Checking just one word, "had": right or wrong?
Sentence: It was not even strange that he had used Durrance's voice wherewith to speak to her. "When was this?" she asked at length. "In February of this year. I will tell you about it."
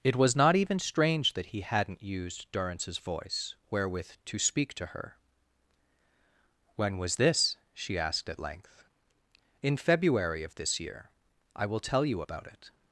wrong